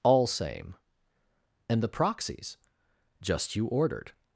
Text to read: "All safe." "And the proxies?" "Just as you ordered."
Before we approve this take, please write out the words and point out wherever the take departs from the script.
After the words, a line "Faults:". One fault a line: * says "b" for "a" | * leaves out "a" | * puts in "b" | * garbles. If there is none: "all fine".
"All same." "And the proxies?" "Just you ordered."
Faults:
* says "same" for "safe"
* leaves out "as"